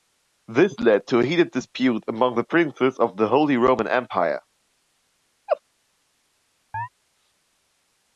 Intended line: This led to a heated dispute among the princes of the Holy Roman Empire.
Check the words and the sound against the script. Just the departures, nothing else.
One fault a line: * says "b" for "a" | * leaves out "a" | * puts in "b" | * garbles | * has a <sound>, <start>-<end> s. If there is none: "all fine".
* has a laugh, 5.5-5.6 s
* has a chirp, 6.7-6.9 s